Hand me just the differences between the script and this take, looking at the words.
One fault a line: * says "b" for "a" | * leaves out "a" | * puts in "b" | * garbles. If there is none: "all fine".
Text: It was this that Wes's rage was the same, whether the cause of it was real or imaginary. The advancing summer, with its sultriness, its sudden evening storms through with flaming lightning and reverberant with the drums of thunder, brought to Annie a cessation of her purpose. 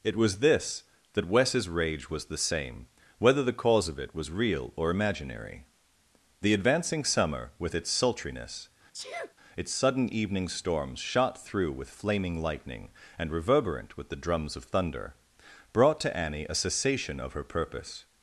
* puts in "shot"